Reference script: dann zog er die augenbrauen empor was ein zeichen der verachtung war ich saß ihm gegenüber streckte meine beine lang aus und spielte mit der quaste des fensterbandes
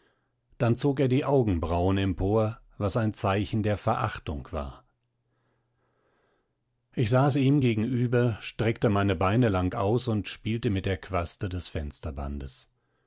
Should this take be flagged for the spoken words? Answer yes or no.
no